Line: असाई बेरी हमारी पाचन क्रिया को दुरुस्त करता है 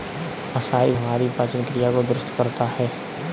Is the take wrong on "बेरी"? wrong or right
wrong